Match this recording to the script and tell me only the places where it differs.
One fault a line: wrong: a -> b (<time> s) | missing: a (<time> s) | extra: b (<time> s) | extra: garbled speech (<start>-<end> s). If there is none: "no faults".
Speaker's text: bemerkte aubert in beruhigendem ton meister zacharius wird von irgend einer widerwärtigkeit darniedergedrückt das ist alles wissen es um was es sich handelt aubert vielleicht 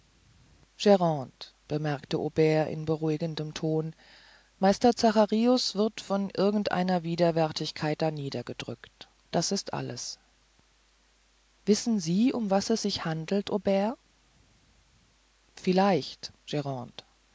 wrong: es -> sie (12.0 s)